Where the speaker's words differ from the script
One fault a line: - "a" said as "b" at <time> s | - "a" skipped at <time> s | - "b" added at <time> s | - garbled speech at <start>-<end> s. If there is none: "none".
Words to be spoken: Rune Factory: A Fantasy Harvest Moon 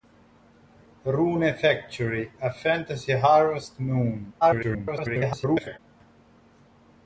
- garbled speech at 4.4-5.8 s